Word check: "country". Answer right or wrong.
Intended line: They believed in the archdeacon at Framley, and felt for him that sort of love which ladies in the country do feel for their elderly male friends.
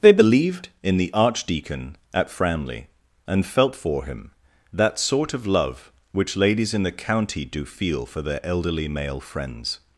wrong